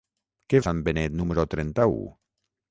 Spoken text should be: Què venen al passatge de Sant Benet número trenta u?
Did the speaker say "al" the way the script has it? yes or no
no